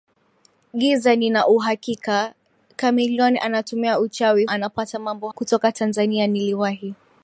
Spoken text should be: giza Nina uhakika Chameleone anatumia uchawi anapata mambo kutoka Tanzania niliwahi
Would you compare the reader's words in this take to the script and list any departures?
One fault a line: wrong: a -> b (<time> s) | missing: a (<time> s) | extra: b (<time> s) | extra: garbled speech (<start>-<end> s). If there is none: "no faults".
no faults